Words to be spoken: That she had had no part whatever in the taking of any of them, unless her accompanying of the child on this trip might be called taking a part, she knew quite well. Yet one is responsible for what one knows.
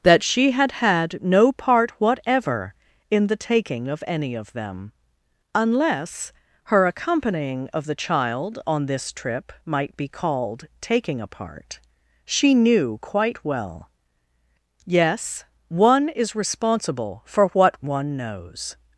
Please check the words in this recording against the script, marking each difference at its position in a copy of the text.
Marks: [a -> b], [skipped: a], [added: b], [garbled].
That she had had no part whatever in the taking of any of them, unless her accompanying of the child on this trip might be called taking a part, she knew quite well. [Yet -> Yes] one is responsible for what one knows.